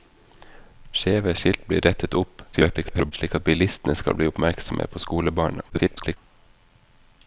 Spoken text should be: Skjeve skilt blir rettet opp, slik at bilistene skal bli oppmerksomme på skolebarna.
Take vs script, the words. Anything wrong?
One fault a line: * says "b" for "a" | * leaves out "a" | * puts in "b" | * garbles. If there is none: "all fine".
* garbles
* garbles